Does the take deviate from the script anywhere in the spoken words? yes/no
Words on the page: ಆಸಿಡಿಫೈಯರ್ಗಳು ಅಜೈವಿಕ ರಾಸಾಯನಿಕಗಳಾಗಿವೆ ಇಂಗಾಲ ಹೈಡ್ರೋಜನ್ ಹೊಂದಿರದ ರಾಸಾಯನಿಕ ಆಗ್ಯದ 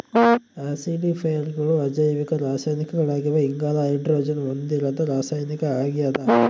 no